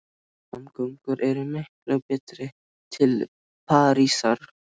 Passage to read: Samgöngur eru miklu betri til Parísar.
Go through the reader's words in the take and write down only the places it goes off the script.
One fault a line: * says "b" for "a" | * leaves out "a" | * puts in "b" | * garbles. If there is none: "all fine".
all fine